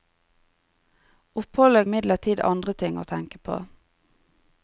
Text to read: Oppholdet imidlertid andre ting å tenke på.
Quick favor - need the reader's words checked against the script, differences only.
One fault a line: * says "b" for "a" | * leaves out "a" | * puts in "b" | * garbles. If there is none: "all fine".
all fine